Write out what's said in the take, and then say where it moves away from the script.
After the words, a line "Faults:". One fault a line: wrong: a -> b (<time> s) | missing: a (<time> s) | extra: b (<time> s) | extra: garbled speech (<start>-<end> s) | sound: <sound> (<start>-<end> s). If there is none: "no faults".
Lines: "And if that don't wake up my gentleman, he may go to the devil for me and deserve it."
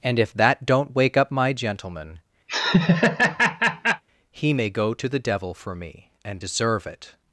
"And if that don't wake up my gentleman, he may go to the devil for me and deserve it."
Faults:
sound: laugh (2.5-4.0 s)